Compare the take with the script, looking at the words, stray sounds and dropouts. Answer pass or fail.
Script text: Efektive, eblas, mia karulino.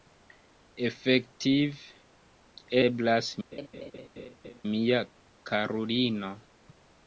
fail